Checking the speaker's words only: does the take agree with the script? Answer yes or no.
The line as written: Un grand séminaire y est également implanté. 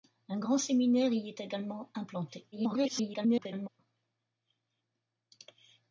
no